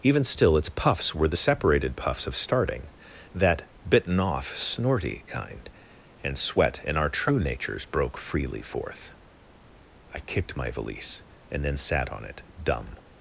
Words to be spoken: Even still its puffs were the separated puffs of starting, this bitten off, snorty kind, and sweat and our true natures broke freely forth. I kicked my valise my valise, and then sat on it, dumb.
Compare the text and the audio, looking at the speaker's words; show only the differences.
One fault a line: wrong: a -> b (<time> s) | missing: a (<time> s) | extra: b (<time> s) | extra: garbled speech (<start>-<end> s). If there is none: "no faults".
wrong: this -> that (3.3 s)
missing: my valise (11.2 s)